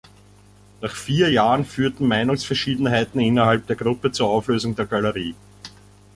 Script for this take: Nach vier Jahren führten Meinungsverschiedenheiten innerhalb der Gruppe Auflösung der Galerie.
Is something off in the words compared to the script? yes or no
yes